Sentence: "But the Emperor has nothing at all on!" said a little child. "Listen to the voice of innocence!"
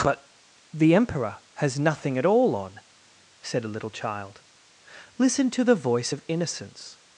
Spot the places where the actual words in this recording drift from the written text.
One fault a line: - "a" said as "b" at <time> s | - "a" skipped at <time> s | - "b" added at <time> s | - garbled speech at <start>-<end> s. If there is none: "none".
none